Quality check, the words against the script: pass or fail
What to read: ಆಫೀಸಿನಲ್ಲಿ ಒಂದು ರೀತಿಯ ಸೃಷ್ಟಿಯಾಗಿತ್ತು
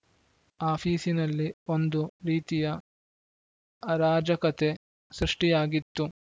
fail